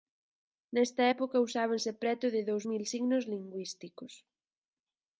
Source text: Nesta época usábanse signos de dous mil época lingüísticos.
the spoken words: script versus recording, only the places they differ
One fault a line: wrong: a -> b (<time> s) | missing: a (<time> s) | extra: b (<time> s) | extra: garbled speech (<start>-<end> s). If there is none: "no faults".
wrong: signos -> preto (2.0 s)
wrong: época -> signos (2.9 s)